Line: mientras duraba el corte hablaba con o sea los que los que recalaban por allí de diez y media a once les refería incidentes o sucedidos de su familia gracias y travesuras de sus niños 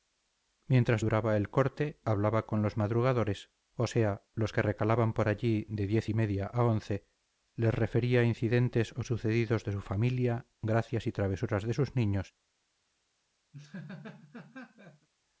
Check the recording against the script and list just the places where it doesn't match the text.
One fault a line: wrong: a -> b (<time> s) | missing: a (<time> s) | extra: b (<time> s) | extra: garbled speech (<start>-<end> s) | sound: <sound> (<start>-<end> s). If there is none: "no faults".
extra: los madrugadores (2.6 s)
missing: los que (4.6 s)
sound: laugh (13.5-15.1 s)